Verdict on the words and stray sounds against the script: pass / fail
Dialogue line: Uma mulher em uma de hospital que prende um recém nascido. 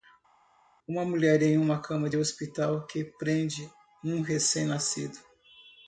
fail